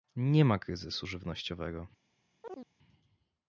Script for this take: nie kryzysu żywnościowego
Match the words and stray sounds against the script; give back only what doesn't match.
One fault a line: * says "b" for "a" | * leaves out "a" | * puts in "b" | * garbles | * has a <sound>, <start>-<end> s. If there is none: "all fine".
* puts in "ma"
* has a chirp, 2.4-2.7 s